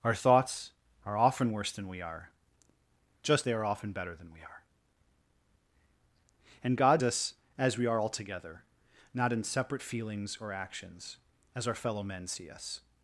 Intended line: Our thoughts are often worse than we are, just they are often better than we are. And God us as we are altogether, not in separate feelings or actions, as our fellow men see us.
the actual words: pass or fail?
pass